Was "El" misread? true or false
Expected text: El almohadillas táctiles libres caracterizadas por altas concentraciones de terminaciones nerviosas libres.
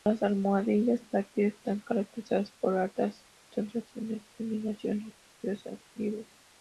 true